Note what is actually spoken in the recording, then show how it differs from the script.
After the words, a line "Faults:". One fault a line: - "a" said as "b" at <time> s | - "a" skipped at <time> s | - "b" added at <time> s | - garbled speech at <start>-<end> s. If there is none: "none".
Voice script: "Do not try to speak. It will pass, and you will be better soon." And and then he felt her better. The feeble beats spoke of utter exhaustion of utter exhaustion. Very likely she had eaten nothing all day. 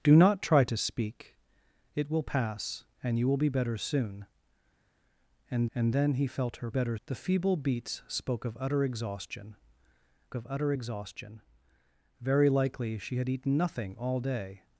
"Do not try to speak. It will pass, and you will be better soon." And and then he felt her better. The feeble beats spoke of utter exhaustion of utter exhaustion. Very likely she had eaten nothing all day.
Faults:
none